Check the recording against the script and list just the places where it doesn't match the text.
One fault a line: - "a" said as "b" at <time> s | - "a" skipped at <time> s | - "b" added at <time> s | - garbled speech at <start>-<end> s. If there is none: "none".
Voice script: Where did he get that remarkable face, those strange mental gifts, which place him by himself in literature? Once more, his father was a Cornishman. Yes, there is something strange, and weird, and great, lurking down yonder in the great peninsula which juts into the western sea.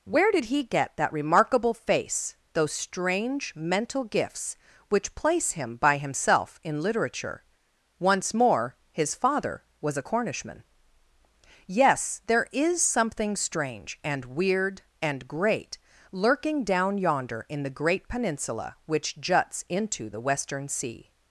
none